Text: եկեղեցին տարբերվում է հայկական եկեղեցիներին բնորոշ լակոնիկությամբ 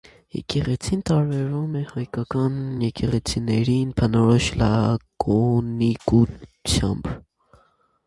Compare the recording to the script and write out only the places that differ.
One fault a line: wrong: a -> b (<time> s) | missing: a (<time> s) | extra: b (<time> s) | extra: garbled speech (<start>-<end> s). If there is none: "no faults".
no faults